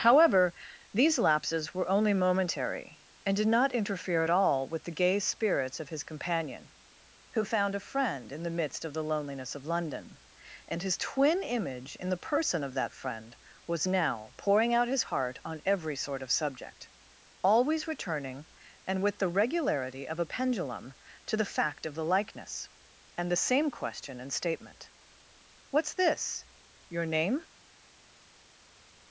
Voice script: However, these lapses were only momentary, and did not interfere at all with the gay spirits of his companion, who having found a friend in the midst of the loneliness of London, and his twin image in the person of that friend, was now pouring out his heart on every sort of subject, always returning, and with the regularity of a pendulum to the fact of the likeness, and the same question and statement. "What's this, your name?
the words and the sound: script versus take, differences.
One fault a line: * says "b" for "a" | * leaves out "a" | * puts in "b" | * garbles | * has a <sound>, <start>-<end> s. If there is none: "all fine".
* leaves out "having"